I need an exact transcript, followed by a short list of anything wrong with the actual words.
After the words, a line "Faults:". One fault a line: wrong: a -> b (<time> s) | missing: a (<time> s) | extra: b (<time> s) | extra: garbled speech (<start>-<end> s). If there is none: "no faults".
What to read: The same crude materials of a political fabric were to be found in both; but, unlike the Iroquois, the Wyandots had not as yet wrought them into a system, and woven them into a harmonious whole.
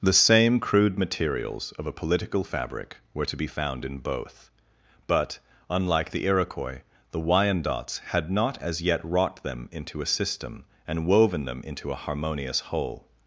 The same crude materials of a political fabric were to be found in both; but, unlike the Iroquois, the Wyandots had not as yet wrought them into a system, and woven them into a harmonious whole.
Faults:
no faults